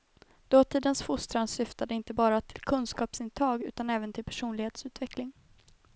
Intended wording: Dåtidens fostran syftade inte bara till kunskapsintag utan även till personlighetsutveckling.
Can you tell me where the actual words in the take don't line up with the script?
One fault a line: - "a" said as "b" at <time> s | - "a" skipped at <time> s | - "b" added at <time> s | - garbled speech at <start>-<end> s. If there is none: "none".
none